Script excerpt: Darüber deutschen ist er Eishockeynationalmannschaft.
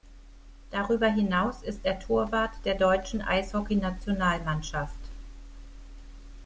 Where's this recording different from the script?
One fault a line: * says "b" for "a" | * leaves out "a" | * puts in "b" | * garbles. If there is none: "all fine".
* says "hinaus" for "deutschen"
* puts in "Torwart der deutschen"